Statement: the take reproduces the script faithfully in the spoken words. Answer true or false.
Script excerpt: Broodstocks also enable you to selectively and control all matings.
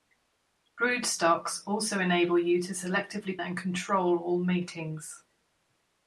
true